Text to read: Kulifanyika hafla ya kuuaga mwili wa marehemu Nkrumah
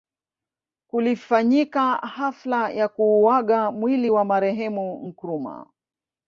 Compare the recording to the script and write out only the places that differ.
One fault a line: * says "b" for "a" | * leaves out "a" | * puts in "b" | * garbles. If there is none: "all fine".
all fine